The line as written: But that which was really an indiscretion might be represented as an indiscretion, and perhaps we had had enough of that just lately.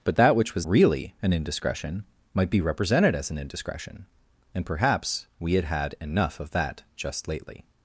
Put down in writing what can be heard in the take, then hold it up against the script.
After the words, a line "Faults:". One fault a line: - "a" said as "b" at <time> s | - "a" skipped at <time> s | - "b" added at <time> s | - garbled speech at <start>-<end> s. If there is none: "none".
But that which was really an indiscretion might be represented as an indiscretion, and perhaps we had had enough of that just lately.
Faults:
none